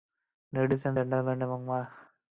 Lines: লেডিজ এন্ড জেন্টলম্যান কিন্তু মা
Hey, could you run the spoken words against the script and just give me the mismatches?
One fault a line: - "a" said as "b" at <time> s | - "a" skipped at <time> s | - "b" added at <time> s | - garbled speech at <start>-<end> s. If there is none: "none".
- "কিন্তু" said as "এবং" at 1.5 s